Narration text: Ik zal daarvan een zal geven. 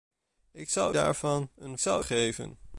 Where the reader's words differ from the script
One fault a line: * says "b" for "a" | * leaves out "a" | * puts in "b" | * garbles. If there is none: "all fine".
all fine